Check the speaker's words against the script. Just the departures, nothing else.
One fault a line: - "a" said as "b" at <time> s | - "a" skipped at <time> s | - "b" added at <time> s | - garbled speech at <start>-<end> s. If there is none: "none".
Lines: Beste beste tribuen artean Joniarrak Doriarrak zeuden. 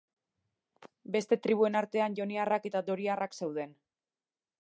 - "beste" skipped at 1.4 s
- "eta" added at 2.7 s